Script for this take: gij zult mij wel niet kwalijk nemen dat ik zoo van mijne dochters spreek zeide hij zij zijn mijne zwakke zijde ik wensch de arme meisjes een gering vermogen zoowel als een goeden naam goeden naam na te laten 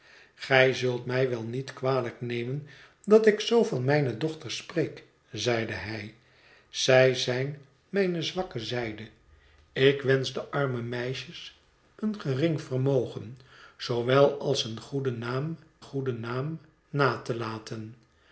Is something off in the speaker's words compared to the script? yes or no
no